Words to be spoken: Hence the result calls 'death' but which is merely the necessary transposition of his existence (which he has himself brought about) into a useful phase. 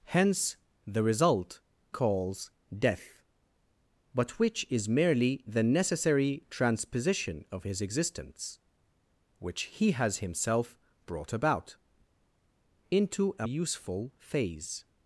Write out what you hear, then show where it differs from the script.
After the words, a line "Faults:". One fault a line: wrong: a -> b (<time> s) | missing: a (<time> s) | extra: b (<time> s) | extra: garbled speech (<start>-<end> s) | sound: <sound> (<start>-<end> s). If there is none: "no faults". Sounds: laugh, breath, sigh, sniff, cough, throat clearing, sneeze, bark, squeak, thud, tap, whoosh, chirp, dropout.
Hence the result calls 'death' but which is merely the necessary transposition of his existence (which he has himself brought about) into a useful phase.
Faults:
no faults